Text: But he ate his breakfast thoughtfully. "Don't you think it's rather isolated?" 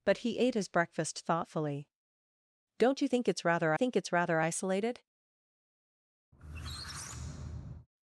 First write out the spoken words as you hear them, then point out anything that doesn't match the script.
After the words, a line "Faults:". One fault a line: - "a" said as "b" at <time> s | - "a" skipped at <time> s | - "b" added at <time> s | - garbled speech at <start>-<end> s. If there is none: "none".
But he ate his breakfast thoughtfully. "Don't you think it's rather think it's rather isolated?"
Faults:
- "think it's rather" added at 3.7 s